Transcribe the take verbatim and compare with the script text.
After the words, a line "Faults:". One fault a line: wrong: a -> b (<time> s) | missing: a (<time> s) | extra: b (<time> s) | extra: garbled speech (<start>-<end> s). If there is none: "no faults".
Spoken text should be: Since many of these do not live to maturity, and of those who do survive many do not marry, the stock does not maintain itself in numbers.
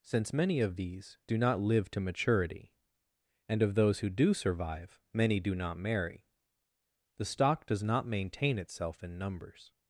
Since many of these do not live to maturity, and of those who do survive many do not marry, the stock does not maintain itself in numbers.
Faults:
no faults